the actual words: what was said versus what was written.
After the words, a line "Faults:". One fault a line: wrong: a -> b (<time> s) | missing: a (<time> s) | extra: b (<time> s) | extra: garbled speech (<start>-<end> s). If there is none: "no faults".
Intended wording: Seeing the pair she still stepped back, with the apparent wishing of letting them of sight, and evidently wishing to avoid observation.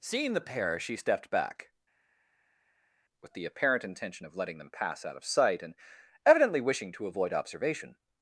Seeing the pair she stepped back, with the apparent intention of letting them pass out of sight, and evidently wishing to avoid observation.
Faults:
missing: still (0.9 s)
wrong: wishing -> intention (3.8 s)
extra: pass out (4.7 s)